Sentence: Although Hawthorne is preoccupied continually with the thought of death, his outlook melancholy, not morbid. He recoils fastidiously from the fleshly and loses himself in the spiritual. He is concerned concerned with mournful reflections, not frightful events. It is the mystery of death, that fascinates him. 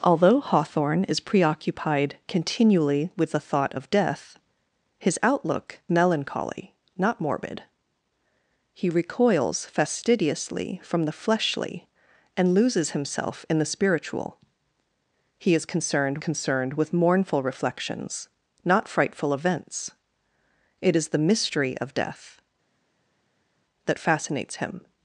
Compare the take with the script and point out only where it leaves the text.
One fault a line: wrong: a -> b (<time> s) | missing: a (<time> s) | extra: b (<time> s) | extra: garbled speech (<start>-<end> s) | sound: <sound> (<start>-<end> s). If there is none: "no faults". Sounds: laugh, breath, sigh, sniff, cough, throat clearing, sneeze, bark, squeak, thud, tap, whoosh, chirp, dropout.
no faults